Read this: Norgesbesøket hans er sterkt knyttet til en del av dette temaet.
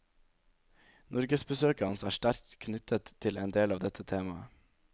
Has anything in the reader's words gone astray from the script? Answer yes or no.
no